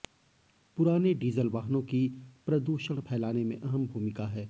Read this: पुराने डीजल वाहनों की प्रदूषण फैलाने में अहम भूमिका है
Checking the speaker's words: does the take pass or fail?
pass